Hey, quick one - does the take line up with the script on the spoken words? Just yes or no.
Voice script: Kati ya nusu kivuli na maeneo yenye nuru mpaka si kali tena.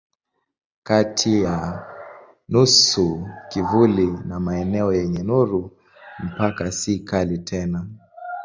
yes